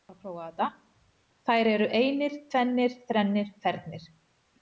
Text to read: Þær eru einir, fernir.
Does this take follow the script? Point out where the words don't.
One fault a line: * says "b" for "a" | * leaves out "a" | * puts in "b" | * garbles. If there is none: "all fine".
* puts in "tvennir þrennir"